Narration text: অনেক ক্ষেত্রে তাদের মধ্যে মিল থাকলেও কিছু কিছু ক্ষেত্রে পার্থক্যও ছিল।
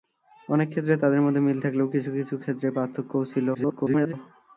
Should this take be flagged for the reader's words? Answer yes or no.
yes